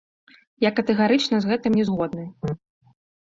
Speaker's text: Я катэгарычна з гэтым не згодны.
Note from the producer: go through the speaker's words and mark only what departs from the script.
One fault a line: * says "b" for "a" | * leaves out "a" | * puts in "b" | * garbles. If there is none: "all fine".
all fine